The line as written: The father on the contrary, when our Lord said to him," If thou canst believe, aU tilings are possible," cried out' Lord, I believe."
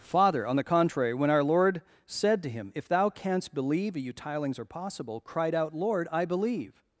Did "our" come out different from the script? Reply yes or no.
no